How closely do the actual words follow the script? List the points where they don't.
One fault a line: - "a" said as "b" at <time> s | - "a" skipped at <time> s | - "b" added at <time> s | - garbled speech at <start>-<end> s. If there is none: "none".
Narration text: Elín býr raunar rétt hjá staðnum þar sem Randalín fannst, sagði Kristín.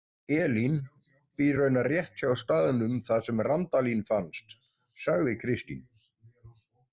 none